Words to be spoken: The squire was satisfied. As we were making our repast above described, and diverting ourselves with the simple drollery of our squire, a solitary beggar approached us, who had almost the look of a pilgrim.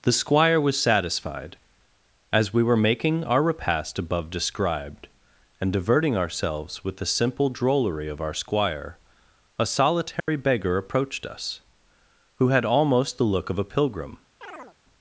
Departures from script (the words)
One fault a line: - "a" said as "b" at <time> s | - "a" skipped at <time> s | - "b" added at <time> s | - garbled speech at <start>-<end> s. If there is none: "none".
none